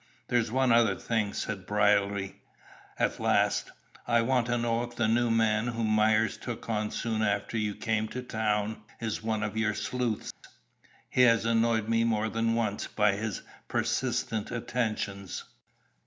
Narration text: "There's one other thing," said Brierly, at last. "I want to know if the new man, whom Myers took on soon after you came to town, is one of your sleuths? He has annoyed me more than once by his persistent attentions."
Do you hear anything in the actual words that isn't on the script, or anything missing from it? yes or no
no